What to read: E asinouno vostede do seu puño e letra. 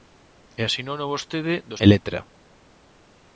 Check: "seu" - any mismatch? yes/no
yes